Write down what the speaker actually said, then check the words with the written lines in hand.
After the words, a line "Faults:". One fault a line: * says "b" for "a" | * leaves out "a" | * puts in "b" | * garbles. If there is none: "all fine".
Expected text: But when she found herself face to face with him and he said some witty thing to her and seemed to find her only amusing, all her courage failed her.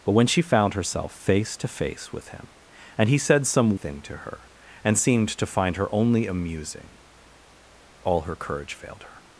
But when she found herself face to face with him and he said some thing to her and seemed to find her only amusing, all her courage failed her.
Faults:
* leaves out "witty"